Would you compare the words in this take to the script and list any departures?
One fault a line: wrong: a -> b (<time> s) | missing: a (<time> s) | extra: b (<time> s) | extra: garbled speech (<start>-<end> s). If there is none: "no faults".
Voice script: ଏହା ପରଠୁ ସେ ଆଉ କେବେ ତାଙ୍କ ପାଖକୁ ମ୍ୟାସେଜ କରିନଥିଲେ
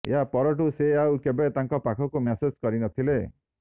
no faults